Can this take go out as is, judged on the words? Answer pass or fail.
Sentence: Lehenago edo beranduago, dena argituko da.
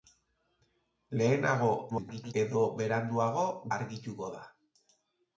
fail